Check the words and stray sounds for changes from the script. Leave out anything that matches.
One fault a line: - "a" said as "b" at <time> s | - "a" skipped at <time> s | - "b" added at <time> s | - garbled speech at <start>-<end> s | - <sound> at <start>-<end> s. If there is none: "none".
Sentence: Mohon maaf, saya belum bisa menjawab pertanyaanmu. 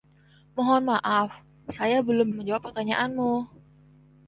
- "bisa" skipped at 2.3 s